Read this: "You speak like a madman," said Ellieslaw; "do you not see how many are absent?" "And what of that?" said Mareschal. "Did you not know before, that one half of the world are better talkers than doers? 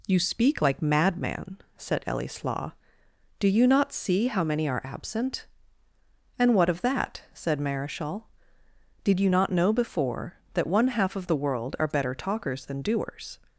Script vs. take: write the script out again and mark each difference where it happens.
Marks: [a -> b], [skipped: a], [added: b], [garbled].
"You speak like [skipped: a] madman," said Ellieslaw; "do you not see how many are absent?" "And what of that?" said Mareschal. "Did you not know before, that one half of the world are better talkers than doers?